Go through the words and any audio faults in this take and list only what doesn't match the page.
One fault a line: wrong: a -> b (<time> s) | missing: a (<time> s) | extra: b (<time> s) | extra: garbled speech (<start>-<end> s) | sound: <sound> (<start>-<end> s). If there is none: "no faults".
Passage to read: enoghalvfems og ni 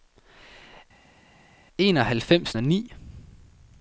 no faults